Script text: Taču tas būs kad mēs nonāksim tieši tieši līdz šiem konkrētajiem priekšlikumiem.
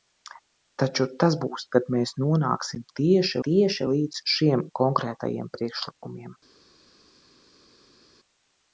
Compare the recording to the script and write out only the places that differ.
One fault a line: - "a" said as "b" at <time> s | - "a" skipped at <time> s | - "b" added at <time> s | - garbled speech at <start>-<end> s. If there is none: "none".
none